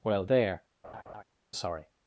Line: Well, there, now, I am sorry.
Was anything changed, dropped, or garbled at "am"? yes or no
yes